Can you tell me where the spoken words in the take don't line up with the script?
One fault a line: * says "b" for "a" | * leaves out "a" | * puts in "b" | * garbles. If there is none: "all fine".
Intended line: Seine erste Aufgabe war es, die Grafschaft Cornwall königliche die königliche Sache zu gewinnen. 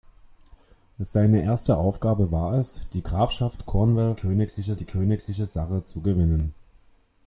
all fine